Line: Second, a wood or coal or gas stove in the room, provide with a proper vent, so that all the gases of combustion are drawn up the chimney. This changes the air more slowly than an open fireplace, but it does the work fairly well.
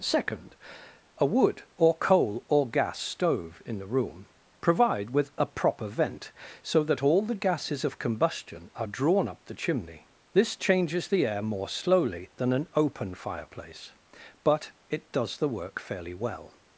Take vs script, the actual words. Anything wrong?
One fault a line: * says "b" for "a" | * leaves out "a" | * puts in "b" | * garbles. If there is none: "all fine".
all fine